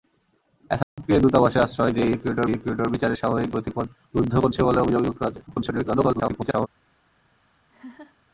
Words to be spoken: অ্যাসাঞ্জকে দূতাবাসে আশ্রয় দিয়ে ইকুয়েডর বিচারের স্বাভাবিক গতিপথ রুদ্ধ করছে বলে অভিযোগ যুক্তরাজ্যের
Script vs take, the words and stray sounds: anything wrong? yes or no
yes